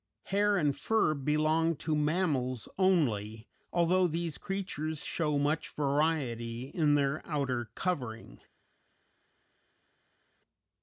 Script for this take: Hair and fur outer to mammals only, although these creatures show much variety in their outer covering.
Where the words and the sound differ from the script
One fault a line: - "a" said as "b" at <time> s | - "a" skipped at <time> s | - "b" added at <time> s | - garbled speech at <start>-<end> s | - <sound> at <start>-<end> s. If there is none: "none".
- "outer" said as "belong" at 1.1 s